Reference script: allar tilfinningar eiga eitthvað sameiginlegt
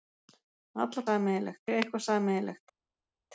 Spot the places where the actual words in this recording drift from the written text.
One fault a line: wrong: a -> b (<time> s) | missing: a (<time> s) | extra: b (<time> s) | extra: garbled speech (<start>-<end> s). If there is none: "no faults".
wrong: tilfinningar -> sameiginlegt (1.1 s)